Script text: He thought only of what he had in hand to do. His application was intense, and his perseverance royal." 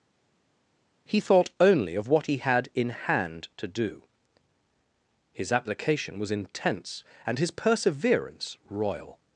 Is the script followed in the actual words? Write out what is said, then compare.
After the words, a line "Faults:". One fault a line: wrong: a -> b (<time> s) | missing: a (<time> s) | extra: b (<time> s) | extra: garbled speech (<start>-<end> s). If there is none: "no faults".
He thought only of what he had in hand to do. His application was intense, and his perseverance royal."
Faults:
no faults